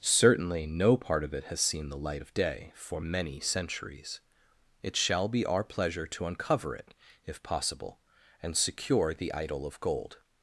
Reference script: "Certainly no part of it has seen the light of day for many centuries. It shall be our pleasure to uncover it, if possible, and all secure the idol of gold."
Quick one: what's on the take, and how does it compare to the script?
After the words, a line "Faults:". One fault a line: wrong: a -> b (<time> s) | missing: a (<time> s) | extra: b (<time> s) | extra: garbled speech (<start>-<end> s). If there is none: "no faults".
"Certainly no part of it has seen the light of day for many centuries. It shall be our pleasure to uncover it, if possible, and secure the idol of gold."
Faults:
missing: all (8.6 s)